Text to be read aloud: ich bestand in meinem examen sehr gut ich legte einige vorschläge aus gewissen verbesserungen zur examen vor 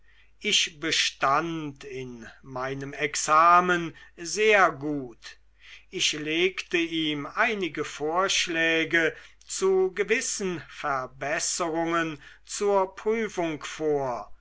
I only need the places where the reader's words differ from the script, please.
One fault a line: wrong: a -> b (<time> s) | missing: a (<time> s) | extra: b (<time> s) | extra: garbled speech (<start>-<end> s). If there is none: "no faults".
extra: ihm (6.8 s)
wrong: aus -> zu (9.4 s)
wrong: examen -> prüfung (12.9 s)